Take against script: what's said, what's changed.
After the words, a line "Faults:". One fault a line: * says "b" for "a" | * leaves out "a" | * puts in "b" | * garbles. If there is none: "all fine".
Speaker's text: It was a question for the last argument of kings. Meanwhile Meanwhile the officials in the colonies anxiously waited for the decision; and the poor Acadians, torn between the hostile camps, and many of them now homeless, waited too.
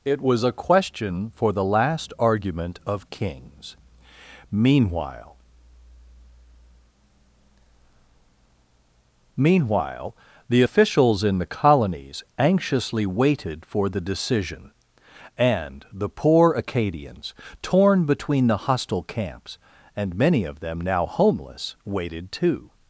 It was a question for the last argument of kings. Meanwhile Meanwhile the officials in the colonies anxiously waited for the decision; and the poor Acadians, torn between the hostile camps, and many of them now homeless, waited too.
Faults:
all fine